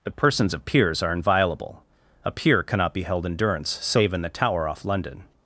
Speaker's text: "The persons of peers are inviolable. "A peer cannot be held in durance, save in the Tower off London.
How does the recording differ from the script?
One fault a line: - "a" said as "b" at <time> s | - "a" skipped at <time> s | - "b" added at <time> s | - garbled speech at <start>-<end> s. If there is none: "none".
none